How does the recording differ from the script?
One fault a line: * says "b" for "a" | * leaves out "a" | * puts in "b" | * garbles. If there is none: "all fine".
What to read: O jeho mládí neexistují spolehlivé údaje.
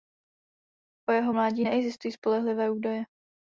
all fine